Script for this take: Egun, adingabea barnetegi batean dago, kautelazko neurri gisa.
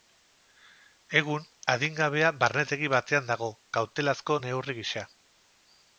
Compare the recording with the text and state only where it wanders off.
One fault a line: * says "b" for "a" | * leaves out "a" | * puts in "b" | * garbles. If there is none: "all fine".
all fine